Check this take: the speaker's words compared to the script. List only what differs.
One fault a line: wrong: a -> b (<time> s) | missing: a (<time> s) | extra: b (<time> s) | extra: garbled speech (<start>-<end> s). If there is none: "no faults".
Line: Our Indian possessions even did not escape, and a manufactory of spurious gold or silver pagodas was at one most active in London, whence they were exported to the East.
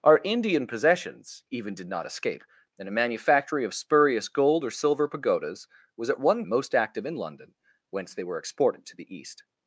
no faults